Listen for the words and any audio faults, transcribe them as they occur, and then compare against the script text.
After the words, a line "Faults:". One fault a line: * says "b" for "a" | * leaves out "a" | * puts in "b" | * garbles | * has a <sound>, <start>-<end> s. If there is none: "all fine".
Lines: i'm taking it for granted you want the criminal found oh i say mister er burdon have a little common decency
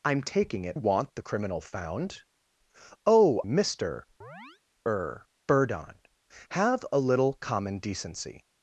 i'm taking it want the criminal found oh mister er burdon have a little common decency
Faults:
* leaves out "for granted you"
* leaves out "i say"
* has a chirp, 4.2-4.6 s